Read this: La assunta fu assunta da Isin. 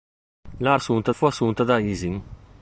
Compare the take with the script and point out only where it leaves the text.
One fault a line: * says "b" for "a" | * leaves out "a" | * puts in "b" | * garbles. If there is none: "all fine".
all fine